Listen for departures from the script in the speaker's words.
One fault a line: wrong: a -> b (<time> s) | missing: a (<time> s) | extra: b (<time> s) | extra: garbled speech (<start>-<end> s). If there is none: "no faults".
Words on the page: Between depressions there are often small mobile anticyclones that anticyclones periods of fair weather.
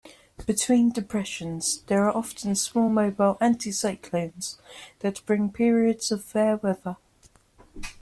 wrong: anticyclones -> bring (5.3 s)